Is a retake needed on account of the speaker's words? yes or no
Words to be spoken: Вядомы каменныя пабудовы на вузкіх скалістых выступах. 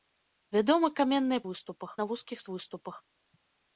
yes